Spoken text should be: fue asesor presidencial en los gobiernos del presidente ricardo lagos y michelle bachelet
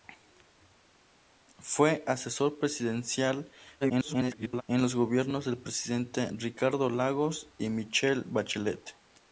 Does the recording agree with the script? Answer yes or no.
no